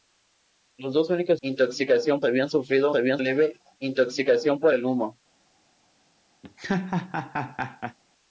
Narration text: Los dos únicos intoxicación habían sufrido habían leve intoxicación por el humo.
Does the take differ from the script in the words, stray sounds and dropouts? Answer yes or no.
yes